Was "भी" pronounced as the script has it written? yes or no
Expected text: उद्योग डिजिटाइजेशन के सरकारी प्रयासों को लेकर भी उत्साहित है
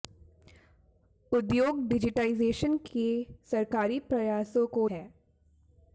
no